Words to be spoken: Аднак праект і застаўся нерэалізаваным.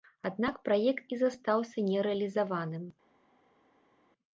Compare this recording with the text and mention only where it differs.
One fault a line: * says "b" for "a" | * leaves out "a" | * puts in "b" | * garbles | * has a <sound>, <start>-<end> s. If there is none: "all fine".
all fine